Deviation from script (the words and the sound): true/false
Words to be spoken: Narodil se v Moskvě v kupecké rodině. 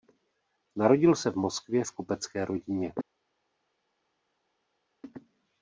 false